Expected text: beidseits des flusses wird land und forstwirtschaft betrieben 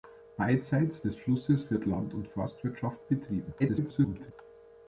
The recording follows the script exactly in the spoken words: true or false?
false